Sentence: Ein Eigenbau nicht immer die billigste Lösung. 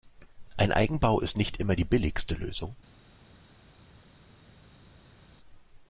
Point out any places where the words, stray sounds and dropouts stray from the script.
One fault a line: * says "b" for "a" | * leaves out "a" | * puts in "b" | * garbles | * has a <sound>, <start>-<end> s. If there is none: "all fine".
* puts in "ist"